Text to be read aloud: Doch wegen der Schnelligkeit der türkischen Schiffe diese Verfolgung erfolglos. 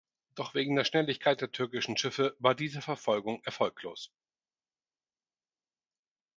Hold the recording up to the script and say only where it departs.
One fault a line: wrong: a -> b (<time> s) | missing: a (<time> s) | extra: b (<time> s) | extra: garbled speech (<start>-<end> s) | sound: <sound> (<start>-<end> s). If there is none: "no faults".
extra: war (2.4 s)